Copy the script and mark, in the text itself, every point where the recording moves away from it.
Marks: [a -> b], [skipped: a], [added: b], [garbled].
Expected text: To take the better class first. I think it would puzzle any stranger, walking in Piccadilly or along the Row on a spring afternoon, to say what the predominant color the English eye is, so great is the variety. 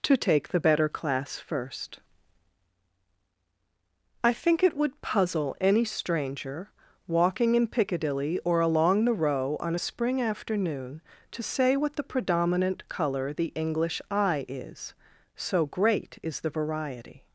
To take the better class first. I think it would puzzle any stranger, walking in Piccadilly or along the Row on a spring afternoon, to say what the predominant color the English eye is, so great is the variety.